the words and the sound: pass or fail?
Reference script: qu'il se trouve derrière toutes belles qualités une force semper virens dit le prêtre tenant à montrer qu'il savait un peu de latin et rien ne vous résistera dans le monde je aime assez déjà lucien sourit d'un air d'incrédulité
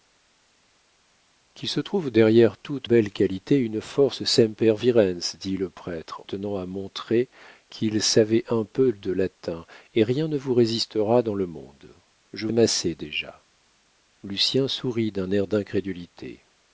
pass